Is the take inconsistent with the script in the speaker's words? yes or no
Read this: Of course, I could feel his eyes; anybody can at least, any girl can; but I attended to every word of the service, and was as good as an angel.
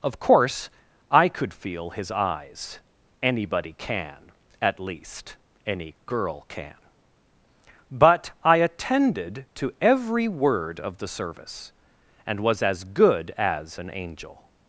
no